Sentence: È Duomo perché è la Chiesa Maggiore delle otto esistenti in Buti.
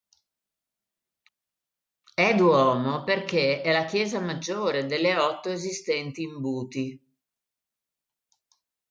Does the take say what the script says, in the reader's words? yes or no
yes